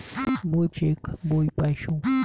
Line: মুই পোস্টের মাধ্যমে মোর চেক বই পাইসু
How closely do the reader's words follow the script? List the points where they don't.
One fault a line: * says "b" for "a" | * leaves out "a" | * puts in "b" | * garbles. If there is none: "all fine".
* leaves out "পোস্টের মাধ্যমে মোর"